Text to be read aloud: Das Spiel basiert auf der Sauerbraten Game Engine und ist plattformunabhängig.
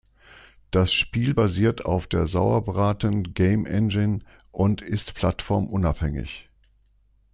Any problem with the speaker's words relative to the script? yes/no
no